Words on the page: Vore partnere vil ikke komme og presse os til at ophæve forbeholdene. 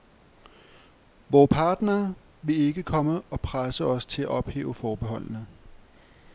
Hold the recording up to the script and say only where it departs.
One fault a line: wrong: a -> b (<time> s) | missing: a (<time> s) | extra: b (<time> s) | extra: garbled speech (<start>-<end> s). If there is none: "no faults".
no faults